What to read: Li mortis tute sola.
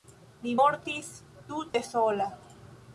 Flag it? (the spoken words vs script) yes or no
no